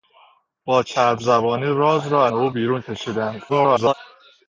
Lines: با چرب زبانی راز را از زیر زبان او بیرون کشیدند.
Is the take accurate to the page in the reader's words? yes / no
no